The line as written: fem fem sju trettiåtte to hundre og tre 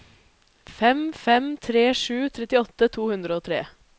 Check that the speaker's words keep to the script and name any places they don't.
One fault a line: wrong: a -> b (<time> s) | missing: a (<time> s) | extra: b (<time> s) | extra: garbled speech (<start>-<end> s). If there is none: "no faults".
extra: tre (1.7 s)